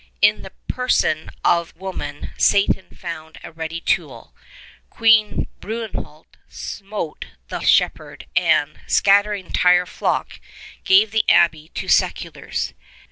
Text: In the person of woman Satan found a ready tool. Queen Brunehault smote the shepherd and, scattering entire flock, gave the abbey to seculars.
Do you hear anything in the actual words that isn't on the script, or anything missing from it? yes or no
no